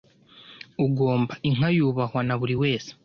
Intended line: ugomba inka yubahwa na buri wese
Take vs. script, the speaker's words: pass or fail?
pass